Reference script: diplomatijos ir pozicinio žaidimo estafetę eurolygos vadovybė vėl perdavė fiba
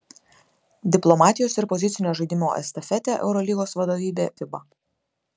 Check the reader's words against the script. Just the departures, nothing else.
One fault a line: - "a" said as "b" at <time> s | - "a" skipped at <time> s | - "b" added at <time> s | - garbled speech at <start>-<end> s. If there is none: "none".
- "vėl perdavė" skipped at 4.3 s